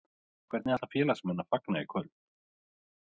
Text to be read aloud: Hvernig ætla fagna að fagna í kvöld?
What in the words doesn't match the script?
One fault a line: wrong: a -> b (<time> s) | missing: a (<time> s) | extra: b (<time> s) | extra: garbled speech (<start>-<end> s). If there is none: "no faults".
wrong: fagna -> félagsmenn (0.9 s)